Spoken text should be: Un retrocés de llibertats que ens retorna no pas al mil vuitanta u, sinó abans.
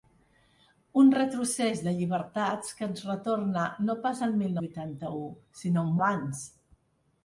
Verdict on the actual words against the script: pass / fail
pass